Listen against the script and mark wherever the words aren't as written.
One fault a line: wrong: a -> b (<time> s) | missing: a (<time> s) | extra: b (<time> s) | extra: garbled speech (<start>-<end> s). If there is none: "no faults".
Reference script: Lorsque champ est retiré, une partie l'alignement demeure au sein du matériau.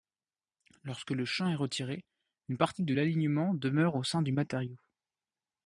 extra: le (1.1 s)
extra: de (2.8 s)